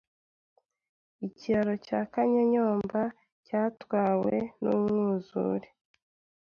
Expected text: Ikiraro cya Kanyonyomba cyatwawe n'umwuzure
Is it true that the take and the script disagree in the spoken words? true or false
false